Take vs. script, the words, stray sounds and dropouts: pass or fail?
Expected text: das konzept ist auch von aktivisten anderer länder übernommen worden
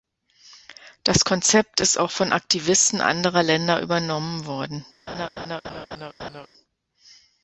fail